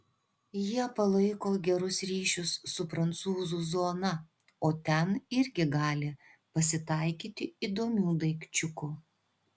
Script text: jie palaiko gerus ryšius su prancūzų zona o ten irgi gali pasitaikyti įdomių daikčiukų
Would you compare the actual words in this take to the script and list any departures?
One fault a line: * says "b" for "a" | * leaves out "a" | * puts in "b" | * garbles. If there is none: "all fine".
all fine